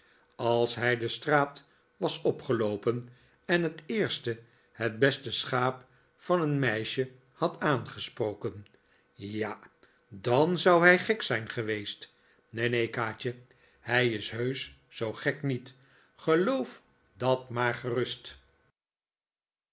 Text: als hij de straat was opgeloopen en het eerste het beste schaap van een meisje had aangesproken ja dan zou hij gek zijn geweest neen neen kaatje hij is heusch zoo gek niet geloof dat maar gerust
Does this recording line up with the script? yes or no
yes